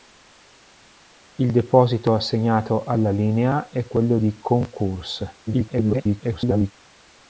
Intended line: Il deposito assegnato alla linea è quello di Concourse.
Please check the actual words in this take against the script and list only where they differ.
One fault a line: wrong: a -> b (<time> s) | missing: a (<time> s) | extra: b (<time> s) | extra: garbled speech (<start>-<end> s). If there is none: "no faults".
extra: garbled speech (5.5-6.7 s)